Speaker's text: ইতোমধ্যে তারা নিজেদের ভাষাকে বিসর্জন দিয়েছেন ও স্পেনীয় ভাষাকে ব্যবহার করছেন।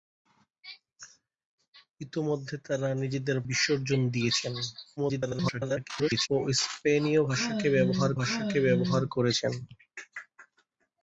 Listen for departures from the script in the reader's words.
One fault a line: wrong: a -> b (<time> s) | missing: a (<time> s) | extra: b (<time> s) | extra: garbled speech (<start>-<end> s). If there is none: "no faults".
missing: ভাষাকে (3.4 s)
extra: garbled speech (5.0-6.3 s)
extra: ভাষাকে ব্যবহার (8.2 s)